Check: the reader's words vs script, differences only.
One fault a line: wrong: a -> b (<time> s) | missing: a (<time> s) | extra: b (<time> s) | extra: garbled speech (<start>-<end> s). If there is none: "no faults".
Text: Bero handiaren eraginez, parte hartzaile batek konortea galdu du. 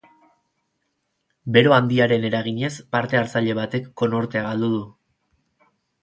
no faults